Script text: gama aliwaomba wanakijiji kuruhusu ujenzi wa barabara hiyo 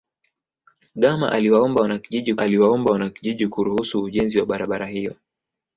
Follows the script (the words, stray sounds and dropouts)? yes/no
no